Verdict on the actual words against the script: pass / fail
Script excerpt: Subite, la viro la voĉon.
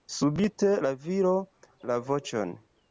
pass